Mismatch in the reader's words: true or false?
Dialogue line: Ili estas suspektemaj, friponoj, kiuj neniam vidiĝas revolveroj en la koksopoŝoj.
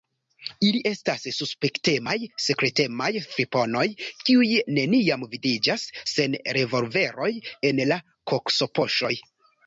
true